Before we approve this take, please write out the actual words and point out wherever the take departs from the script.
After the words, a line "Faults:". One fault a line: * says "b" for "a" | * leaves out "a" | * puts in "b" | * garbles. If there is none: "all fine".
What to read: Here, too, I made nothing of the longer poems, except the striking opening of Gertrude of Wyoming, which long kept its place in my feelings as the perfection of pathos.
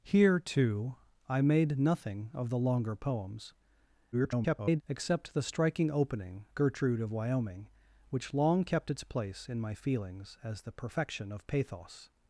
Here, too, I made nothing of the longer poems, [garbled] except the striking opening Gertrude of Wyoming, which long kept its place in my feelings as the perfection of pathos.
Faults:
* garbles
* leaves out "of"